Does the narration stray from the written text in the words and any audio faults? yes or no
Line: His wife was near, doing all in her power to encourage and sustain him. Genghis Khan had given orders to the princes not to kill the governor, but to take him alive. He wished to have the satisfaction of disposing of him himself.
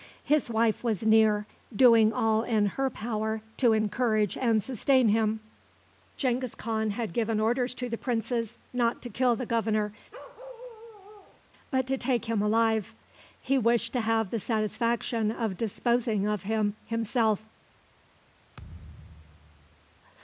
yes